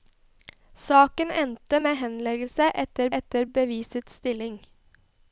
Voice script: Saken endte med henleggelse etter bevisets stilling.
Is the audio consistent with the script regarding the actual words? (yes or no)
no